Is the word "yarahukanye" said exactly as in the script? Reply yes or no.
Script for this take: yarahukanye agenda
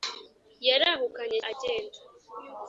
yes